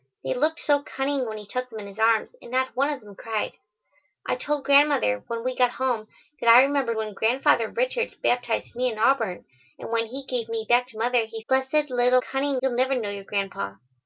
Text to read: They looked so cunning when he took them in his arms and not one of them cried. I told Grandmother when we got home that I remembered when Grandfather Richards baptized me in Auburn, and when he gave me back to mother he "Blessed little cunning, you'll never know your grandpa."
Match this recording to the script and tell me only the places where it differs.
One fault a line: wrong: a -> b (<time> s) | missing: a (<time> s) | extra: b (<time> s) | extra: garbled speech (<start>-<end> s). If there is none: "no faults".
no faults